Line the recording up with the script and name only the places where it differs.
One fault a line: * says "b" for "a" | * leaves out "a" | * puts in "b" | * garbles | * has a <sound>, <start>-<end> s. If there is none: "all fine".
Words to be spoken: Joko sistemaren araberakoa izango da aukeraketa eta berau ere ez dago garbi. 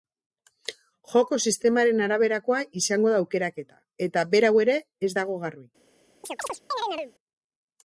* has a chirp, 6.2-7.1 s